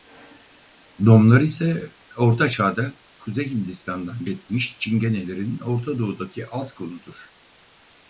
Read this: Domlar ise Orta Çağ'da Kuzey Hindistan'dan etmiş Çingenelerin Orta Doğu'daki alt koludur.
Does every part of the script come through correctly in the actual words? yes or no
yes